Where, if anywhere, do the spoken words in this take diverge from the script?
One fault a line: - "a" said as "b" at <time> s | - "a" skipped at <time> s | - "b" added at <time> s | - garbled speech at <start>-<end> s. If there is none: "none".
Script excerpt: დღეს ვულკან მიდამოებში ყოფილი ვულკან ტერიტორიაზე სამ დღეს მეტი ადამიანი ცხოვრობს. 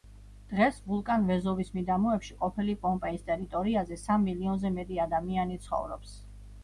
- "ვეზუვის" added at 1.3 s
- "ვულკან" said as "პომპეის" at 2.9 s
- "დღეს" said as "მილიონზე" at 4.3 s